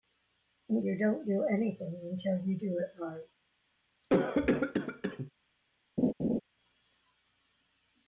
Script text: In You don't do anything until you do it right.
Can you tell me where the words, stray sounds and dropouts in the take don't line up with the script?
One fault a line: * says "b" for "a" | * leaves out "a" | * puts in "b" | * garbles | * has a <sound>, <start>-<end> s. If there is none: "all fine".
* has a cough, 4.0-5.3 s
* has a laugh, 6.0-6.4 s